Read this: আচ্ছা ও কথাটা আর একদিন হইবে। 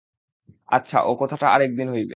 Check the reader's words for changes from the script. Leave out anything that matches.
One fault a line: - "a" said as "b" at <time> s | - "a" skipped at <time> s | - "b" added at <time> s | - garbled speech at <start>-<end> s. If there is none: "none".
none